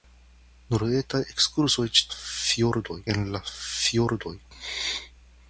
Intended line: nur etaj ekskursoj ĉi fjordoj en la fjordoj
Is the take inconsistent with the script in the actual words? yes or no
no